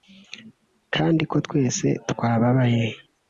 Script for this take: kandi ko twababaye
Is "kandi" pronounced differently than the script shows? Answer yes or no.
no